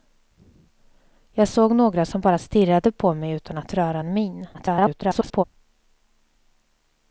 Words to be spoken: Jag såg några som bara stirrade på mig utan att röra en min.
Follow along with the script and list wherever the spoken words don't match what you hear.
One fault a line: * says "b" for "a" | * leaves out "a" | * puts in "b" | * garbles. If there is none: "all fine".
* garbles